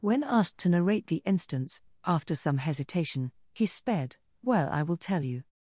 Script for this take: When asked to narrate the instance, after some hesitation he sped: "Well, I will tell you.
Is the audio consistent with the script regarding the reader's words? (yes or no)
yes